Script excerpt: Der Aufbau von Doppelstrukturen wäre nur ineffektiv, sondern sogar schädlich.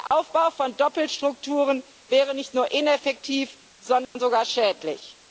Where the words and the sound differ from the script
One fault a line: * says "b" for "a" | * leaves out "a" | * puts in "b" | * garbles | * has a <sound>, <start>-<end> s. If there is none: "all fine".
* has a dropout, 0.1-0.1 s
* puts in "nicht"
* has a dropout, 4.0-4.2 s